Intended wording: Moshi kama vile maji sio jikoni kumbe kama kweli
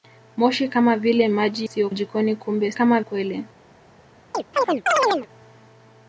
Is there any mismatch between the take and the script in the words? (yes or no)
no